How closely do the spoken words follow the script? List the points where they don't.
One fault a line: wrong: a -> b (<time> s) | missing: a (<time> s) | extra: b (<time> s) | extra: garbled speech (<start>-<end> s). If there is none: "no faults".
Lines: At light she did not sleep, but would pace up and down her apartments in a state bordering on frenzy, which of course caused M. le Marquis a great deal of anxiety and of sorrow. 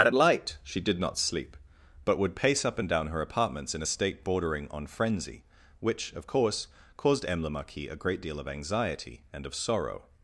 no faults